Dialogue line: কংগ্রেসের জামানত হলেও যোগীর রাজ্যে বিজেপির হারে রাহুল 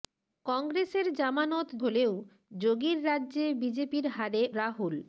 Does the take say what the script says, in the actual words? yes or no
yes